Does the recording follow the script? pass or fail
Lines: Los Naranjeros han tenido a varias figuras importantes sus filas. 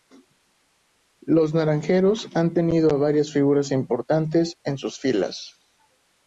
fail